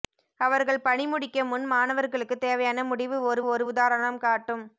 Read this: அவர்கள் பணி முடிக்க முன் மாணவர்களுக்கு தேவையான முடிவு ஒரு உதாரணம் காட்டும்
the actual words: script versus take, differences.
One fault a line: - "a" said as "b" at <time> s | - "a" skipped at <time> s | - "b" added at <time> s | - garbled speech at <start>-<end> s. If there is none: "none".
- "ஒரு" added at 3.5 s